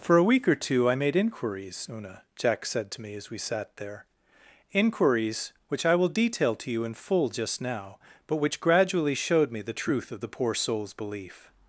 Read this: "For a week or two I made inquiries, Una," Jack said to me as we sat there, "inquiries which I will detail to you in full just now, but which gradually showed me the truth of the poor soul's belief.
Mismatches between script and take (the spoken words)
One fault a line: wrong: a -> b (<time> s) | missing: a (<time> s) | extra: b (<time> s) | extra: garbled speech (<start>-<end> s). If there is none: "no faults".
no faults